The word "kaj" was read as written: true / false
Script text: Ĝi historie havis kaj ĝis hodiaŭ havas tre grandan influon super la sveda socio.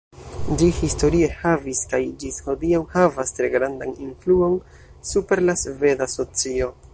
true